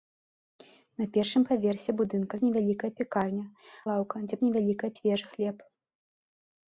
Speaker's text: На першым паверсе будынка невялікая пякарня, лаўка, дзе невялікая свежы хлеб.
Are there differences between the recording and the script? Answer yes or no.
no